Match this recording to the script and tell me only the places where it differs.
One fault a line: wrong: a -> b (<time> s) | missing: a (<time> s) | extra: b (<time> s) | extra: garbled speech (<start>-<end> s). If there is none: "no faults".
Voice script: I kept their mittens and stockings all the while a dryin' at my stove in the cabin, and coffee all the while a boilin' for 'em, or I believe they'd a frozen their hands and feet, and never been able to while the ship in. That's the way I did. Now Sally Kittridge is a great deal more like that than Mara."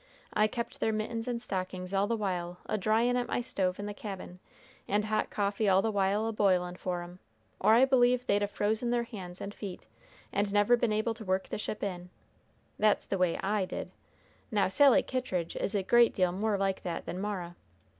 extra: hot (5.0 s)
wrong: while -> work (11.2 s)